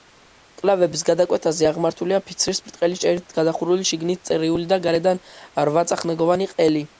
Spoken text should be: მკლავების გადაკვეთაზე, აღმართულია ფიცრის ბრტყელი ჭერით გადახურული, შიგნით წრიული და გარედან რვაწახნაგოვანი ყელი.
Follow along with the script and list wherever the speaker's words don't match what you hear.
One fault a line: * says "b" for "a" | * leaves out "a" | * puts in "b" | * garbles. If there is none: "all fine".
all fine